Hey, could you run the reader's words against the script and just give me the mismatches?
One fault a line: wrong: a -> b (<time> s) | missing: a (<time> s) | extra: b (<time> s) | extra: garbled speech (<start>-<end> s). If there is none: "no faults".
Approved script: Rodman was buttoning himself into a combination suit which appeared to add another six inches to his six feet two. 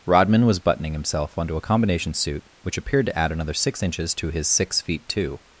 wrong: into -> onto (1.4 s)